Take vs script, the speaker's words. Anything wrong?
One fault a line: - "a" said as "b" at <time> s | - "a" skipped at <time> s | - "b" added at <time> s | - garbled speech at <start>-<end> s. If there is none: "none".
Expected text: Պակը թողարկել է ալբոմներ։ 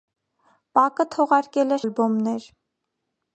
none